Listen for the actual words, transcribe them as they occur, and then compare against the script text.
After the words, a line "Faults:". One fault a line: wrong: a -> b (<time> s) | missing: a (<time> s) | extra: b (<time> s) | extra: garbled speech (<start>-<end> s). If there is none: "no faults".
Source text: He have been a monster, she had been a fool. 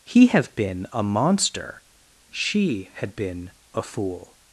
He have been a monster, she had been a fool.
Faults:
no faults